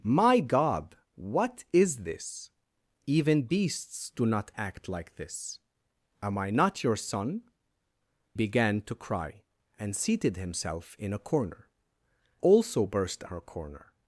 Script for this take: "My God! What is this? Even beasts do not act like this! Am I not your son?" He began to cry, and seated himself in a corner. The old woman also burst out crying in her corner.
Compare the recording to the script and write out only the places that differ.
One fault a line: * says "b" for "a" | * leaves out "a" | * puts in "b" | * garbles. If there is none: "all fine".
* leaves out "He"
* leaves out "The old woman"
* leaves out "out crying in"